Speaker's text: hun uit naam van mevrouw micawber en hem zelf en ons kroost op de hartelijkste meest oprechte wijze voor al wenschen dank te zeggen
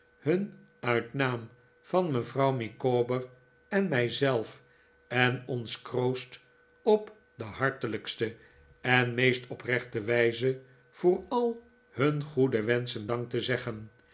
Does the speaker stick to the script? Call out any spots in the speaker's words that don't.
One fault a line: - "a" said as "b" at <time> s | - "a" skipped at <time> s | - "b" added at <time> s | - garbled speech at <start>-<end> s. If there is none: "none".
- "hem" said as "mij" at 3.9 s
- "en" added at 8.8 s
- "hun goede" added at 11.9 s